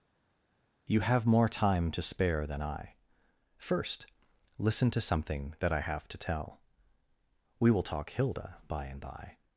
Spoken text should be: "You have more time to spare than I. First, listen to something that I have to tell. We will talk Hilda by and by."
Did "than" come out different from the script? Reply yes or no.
no